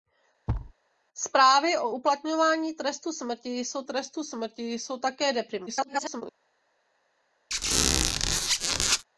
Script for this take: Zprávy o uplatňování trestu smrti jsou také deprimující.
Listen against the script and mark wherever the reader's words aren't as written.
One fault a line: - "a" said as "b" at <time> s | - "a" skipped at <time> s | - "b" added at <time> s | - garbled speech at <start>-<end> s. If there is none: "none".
- "trestu smrti jsou" added at 3.8 s
- garbled speech at 5.7-6.2 s